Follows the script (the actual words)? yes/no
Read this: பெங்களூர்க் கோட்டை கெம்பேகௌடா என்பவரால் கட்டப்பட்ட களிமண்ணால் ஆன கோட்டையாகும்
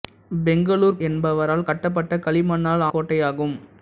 no